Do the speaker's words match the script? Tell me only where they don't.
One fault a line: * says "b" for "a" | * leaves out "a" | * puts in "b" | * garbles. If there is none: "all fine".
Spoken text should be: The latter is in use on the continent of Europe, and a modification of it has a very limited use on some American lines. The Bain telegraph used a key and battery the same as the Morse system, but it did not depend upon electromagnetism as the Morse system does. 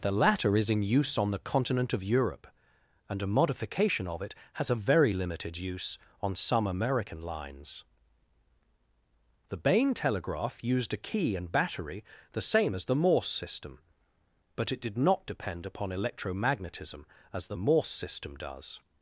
all fine